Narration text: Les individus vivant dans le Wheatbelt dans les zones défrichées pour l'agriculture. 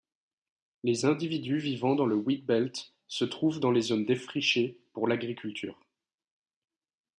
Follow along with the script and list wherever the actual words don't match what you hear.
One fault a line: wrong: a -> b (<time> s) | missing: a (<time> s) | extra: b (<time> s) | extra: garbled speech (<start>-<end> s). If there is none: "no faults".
extra: se trouvent (3.0 s)